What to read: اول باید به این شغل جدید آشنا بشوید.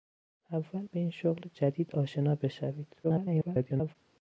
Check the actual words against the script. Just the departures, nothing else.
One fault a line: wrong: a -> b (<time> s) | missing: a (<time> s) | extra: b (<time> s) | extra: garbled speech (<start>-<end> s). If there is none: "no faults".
missing: باید (0.9 s)
extra: garbled speech (3.0-4.0 s)